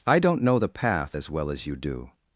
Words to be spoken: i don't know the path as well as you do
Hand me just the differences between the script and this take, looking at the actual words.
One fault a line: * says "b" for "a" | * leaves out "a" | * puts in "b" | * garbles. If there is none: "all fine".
all fine